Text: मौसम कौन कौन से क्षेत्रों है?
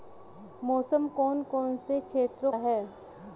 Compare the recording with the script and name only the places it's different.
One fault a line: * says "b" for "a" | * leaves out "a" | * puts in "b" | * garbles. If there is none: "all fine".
all fine